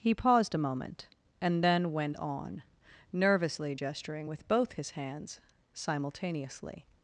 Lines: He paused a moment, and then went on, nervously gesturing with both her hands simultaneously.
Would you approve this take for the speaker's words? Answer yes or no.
no